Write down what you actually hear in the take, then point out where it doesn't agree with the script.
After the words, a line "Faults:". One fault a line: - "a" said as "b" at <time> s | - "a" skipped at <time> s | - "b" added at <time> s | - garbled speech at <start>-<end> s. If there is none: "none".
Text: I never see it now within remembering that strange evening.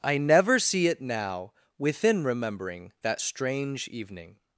I never see it now within remembering that strange evening.
Faults:
none